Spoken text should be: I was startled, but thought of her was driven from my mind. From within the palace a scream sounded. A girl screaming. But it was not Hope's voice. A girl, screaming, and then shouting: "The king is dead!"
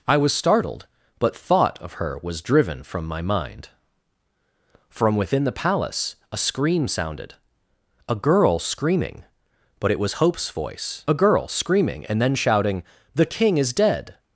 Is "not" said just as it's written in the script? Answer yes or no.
no